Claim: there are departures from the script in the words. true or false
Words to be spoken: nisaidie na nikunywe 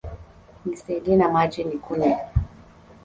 true